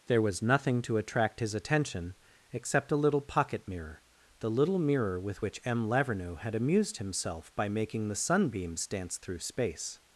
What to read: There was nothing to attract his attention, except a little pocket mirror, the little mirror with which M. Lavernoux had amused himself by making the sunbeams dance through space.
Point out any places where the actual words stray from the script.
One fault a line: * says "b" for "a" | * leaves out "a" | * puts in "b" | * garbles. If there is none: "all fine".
all fine